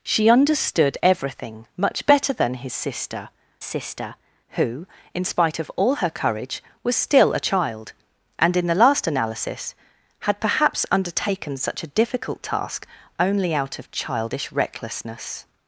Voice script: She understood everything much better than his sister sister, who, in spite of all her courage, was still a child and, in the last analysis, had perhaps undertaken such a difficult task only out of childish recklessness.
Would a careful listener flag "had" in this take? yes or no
no